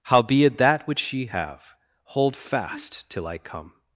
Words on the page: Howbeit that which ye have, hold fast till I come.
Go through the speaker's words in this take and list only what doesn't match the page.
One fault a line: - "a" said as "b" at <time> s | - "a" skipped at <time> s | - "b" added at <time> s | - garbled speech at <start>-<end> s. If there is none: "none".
none